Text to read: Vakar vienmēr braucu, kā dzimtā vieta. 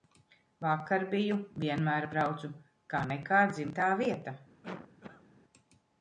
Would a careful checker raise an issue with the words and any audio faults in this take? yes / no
yes